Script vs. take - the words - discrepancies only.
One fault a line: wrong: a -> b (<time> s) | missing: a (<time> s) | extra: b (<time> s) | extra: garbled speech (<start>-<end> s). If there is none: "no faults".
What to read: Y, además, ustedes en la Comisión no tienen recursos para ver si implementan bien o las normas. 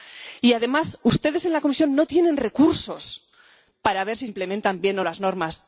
no faults